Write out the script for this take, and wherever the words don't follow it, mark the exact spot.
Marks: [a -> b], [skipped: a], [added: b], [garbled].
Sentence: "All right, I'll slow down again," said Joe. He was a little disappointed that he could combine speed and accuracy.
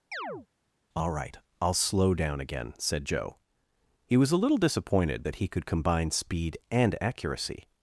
"All right, I'll slow down again," said Joe. He was a little disappointed that he could combine speed and accuracy.